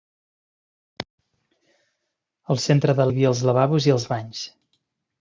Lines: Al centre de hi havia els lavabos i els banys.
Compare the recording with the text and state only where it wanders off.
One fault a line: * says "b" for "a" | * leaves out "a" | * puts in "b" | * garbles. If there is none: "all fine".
all fine